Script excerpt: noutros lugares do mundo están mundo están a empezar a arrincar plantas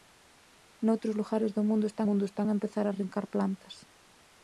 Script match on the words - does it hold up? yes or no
yes